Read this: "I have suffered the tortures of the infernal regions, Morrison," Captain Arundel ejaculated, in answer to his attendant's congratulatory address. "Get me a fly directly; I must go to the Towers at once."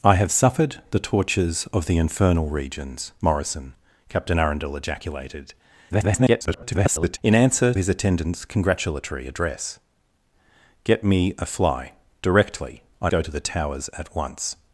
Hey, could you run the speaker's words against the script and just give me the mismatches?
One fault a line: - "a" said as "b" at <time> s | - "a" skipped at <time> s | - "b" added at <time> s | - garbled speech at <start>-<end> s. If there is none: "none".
- garbled speech at 5.9-7.2 s
- "to" skipped at 7.7 s
- "must" skipped at 13.1 s